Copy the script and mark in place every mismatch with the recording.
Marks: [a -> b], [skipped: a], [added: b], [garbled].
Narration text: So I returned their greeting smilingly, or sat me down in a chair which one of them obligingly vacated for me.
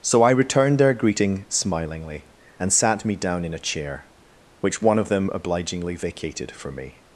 So I returned their greeting smilingly, [or -> and] sat me down in a chair which one of them obligingly vacated for me.